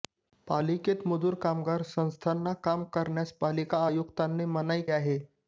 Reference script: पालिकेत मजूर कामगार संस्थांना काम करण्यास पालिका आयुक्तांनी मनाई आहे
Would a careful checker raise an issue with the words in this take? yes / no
no